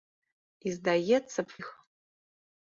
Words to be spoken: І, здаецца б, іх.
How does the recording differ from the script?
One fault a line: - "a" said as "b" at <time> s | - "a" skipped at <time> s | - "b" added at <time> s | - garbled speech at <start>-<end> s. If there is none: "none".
none